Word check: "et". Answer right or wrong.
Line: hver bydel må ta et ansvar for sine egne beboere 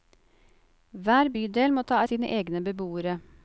wrong